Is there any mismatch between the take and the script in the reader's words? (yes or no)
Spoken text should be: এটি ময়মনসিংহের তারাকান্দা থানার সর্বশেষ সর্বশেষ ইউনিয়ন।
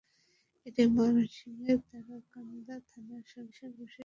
no